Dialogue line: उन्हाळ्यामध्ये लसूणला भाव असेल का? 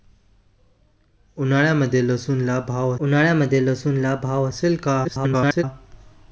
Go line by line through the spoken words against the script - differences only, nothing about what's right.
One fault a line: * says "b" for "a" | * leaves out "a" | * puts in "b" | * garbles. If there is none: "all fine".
* puts in "उन्हाळ्यामध्ये लसूणला भाव"
* garbles